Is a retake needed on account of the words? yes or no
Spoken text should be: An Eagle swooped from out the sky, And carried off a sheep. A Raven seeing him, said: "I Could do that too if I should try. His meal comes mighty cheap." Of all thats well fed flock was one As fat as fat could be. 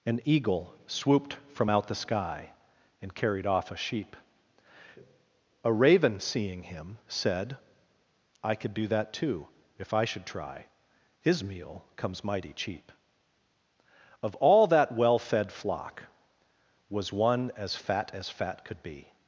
yes